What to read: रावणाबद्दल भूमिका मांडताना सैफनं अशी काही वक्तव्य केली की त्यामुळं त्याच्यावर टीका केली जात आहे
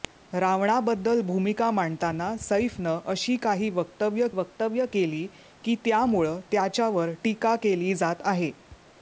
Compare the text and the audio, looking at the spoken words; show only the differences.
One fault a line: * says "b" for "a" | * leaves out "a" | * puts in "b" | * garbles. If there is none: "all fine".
* puts in "वक्तव्य"